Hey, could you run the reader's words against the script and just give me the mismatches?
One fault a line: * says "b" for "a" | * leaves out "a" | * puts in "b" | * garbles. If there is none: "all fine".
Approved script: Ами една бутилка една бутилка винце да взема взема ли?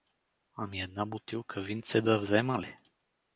* leaves out "една бутилка"
* leaves out "взема"